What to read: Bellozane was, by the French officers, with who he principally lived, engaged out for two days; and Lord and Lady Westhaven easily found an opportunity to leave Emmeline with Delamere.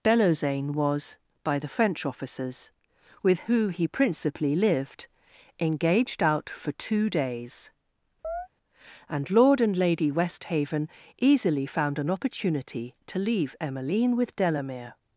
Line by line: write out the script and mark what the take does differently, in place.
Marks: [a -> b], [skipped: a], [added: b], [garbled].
Bellozane was, by the French officers, with who he principally lived, engaged out for two days; and Lord and Lady Westhaven easily found an opportunity to leave Emmeline with Delamere.